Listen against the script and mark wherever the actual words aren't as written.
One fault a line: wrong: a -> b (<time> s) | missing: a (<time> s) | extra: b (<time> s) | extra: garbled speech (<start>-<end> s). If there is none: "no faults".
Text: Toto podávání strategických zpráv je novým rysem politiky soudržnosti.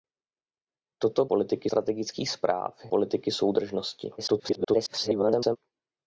wrong: podávání -> politiky (1.2 s)
missing: je novým rysem (2.8 s)
extra: garbled speech (4.2-5.6 s)